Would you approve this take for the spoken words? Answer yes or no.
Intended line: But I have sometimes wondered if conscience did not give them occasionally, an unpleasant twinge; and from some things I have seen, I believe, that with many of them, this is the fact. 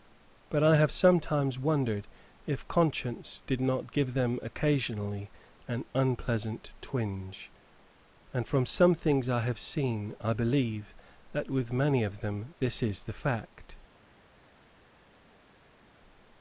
yes